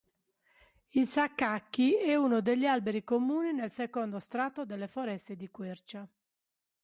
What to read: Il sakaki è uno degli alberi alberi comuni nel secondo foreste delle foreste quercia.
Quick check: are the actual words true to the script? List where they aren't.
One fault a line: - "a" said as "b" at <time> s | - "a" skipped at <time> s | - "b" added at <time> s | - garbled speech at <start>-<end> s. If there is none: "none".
- "alberi" skipped at 3.0 s
- "foreste" said as "strato" at 4.2 s
- "di" added at 5.3 s